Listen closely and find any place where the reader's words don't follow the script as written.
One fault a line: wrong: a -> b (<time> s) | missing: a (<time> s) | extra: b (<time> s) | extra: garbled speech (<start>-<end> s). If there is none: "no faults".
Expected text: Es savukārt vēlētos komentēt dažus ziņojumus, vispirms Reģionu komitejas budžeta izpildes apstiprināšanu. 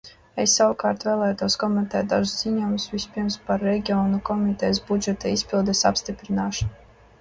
extra: par (3.5 s)